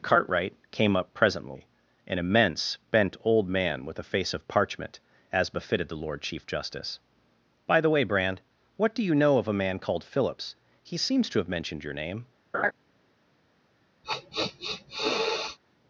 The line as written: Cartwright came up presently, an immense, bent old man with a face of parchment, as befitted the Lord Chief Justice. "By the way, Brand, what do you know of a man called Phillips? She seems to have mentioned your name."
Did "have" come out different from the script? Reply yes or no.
no